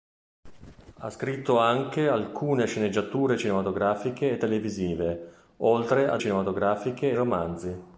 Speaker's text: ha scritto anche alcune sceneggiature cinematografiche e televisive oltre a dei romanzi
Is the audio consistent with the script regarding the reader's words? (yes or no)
no